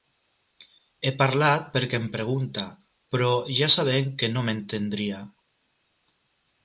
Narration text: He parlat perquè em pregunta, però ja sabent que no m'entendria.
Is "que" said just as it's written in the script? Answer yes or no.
yes